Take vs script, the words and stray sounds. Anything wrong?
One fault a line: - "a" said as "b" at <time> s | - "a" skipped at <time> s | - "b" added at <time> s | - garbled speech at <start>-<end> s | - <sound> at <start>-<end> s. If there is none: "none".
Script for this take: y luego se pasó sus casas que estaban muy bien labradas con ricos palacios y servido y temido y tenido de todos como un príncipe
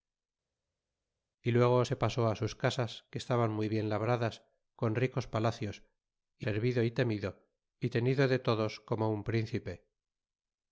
none